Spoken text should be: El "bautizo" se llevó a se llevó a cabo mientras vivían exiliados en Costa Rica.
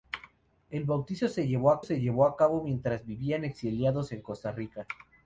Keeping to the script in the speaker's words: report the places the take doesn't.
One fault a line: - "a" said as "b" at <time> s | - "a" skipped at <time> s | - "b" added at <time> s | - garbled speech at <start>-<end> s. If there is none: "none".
none